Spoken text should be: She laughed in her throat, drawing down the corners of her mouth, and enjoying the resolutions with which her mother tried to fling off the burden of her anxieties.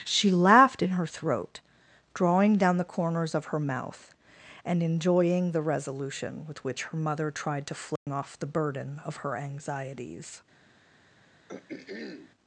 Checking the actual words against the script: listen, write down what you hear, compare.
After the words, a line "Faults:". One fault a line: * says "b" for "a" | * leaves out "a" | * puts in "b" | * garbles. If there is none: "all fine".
She laughed in her throat, drawing down the corners of her mouth, and enjoying the resolution with which her mother tried to fling off the burden of her anxieties.
Faults:
* says "resolution" for "resolutions"